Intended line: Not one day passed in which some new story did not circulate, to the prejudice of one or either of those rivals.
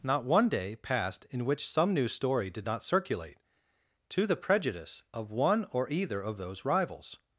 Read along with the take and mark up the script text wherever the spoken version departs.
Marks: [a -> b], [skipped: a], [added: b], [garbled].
Not one day passed in which some new story did not circulate, to the prejudice of one or either of those rivals.